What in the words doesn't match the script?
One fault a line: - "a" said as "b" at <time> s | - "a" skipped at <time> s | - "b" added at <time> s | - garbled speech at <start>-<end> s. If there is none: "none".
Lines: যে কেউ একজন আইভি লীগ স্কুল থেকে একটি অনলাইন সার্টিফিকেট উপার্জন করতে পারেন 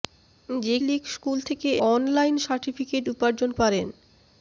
- "কেউ একজন আইভি" skipped at 0.8 s
- "একটি" skipped at 1.7 s
- "করতে" skipped at 3.5 s